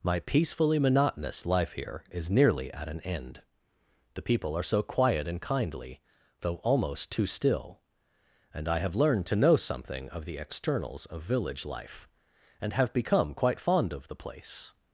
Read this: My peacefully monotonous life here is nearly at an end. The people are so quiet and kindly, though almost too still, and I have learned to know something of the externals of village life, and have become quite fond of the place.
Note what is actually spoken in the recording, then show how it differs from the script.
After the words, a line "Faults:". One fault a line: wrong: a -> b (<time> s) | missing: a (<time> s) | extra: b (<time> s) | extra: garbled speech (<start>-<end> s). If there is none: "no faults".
My peacefully monotonous life here is nearly at an end. The people are so quiet and kindly, though almost too still, and I have learned to know something of the externals of village life, and have become quite fond of the place.
Faults:
no faults